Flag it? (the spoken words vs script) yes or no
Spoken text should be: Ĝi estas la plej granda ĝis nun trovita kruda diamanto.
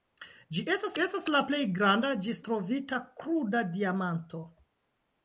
yes